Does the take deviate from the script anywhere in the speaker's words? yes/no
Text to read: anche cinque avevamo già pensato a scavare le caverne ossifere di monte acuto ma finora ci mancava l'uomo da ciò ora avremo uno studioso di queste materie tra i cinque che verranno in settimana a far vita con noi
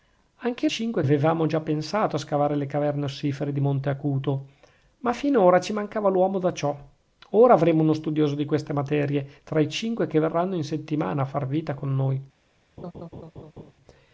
no